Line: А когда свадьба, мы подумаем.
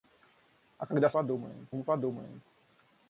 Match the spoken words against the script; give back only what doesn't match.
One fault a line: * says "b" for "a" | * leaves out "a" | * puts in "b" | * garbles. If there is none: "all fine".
* says "подумаем" for "свадьба"